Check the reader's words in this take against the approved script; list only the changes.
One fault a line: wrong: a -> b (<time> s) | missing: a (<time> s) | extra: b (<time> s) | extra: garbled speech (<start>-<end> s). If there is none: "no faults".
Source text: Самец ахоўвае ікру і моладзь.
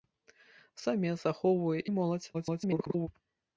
missing: ікру (1.8 s)
extra: garbled speech (2.3-3.1 s)